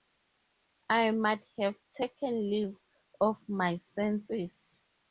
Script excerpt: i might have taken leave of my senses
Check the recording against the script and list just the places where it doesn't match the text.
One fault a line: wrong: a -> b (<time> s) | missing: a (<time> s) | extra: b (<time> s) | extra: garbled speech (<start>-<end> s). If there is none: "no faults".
no faults